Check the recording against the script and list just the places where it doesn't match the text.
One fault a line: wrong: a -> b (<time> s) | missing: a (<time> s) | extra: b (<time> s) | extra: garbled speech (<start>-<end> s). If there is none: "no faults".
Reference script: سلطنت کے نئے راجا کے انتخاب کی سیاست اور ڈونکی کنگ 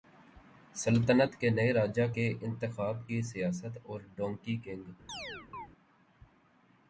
no faults